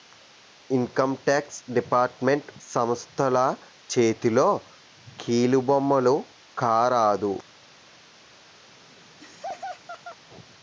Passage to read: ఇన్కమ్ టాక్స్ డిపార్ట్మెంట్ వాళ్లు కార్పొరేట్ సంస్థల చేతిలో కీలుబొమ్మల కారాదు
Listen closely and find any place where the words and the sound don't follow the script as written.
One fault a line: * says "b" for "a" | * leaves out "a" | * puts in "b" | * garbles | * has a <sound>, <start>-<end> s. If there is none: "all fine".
* leaves out "వాళ్లు కార్పొరేట్"
* has a laugh, 8.7-10.2 s